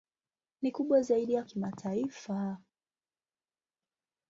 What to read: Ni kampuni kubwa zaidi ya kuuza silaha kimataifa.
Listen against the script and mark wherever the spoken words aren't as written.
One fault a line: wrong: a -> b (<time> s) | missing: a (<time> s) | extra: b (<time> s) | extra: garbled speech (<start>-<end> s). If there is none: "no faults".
missing: kampuni (0.7 s)
missing: kuuza silaha (1.4 s)